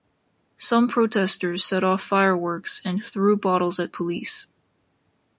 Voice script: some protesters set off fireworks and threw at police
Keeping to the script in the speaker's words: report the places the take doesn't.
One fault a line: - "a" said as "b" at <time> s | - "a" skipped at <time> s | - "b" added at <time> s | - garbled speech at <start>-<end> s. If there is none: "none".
- "bottles" added at 3.4 s